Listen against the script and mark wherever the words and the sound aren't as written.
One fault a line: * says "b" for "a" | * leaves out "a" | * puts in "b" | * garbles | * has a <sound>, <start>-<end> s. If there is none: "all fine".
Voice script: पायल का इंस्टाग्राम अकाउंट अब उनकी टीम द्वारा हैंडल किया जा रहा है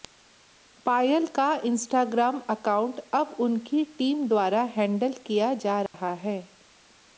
* has a dropout, 5.9-5.9 s